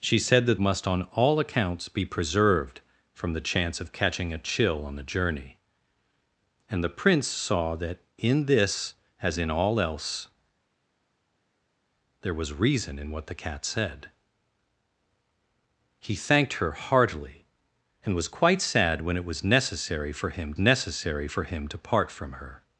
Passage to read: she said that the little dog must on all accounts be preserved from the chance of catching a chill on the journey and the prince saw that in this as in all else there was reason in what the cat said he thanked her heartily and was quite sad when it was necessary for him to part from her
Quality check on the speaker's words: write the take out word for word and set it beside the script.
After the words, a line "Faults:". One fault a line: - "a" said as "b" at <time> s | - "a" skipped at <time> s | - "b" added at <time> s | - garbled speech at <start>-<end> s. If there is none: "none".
she said that must on all accounts be preserved from the chance of catching a chill on the journey and the prince saw that in this as in all else there was reason in what the cat said he thanked her heartily and was quite sad when it was necessary for him necessary for him to part from her
Faults:
- "the little dog" skipped at 0.6 s
- "necessary for him" added at 20.6 s